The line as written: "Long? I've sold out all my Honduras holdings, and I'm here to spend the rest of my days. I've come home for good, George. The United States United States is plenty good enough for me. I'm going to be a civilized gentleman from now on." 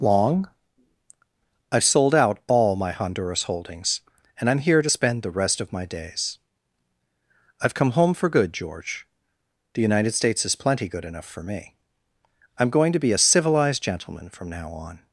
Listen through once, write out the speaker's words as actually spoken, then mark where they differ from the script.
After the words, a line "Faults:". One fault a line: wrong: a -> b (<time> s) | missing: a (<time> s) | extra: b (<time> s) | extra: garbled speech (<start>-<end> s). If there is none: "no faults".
"Long? I've sold out all my Honduras holdings, and I'm here to spend the rest of my days. I've come home for good, George. The United States is plenty good enough for me. I'm going to be a civilized gentleman from now on."
Faults:
missing: United States (10.4 s)